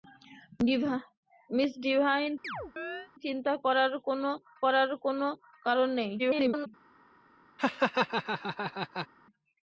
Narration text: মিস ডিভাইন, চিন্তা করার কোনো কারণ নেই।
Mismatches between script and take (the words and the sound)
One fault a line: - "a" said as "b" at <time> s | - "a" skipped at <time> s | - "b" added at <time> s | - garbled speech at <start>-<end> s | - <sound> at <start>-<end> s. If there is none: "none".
- chirp at 2.4-3.1 s
- "করার কোনো" added at 4.6 s
- garbled speech at 6.2-6.7 s
- laugh at 7.6-9.1 s